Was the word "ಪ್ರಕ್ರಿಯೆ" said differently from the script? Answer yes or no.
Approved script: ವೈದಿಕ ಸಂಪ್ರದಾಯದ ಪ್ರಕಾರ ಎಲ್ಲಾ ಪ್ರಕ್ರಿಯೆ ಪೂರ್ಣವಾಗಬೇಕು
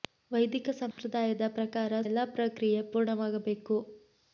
no